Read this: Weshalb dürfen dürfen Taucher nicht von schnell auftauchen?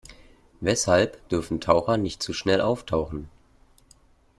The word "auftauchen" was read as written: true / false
true